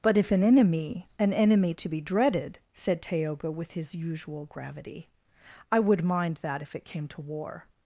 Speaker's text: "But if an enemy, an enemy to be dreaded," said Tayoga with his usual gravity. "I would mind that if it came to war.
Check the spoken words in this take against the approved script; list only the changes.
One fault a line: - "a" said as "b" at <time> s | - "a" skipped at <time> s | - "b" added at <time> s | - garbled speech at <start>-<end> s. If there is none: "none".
none